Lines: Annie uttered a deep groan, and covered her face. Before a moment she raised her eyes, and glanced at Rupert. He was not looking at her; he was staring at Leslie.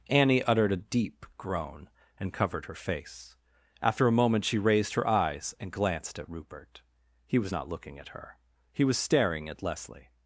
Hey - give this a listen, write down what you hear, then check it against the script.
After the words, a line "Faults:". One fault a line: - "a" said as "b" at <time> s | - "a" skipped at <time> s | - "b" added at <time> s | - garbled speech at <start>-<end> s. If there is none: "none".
Annie uttered a deep groan, and covered her face. After a moment she raised her eyes, and glanced at Rupert. He was not looking at her; he was staring at Leslie.
Faults:
- "Before" said as "After" at 3.8 s